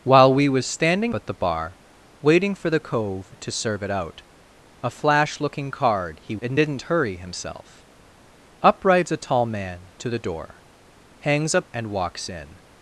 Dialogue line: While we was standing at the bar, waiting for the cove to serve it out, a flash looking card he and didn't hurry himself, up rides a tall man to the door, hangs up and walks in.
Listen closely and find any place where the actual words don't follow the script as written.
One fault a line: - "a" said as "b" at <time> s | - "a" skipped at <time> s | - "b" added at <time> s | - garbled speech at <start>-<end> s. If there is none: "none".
none